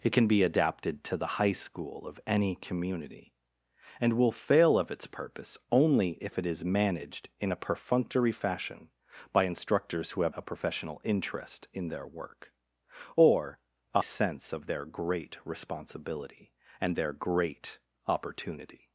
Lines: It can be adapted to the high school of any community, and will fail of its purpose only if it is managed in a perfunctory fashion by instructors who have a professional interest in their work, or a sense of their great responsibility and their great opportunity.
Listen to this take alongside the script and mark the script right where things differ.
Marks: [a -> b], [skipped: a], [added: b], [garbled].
It can be adapted to the high school of any community, and will fail of its purpose only if it is managed in a perfunctory fashion by instructors who have a professional interest in their work, or a sense of their great responsibility and their great opportunity.